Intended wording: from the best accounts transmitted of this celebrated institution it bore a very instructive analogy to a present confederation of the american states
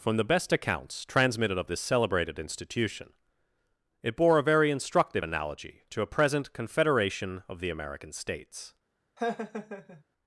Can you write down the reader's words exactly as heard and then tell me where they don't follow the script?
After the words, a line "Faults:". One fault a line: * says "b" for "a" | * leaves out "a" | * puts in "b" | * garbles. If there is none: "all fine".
from the best accounts transmitted of this celebrated institution it bore a very instructive analogy to a present confederation of the american states
Faults:
all fine